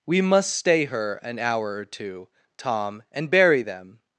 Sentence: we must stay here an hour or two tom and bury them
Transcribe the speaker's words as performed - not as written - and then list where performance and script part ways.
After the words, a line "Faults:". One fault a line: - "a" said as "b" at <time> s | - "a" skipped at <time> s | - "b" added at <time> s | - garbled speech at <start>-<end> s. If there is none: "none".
we must stay her an hour or two tom and bury them
Faults:
- "here" said as "her" at 0.8 s